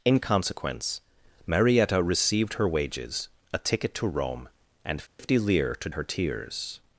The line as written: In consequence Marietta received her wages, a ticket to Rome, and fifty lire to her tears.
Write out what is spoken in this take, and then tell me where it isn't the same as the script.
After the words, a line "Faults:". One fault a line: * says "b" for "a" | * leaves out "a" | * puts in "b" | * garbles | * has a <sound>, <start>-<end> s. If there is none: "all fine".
In consequence Marietta received her wages, a ticket to Rome, and fifty lire to her tears.
Faults:
* has a dropout, 5.1-5.2 s